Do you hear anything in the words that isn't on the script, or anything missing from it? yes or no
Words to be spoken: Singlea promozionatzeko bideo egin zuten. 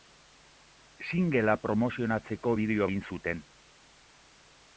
no